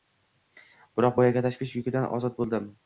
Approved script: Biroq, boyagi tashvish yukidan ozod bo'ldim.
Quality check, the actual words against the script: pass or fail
pass